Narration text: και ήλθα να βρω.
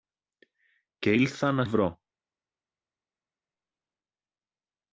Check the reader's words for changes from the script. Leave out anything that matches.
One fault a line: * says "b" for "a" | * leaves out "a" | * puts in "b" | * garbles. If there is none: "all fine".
all fine